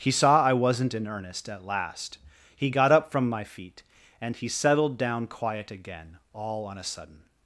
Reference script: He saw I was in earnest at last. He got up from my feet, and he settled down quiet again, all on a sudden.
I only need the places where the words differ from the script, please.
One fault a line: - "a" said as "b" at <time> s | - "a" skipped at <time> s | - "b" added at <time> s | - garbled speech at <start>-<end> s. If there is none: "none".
- "was" said as "wasn't" at 0.5 s